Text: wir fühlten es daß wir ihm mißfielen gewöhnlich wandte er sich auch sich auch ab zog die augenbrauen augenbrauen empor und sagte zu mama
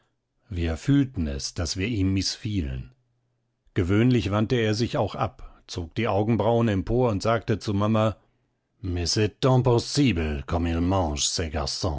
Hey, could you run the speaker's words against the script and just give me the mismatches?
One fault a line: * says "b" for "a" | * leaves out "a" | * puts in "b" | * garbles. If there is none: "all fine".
* leaves out "sich auch"
* leaves out "augenbrauen"